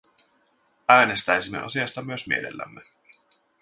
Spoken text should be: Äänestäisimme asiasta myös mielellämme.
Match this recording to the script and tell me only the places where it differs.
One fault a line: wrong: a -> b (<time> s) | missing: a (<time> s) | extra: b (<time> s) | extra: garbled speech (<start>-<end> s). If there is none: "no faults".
no faults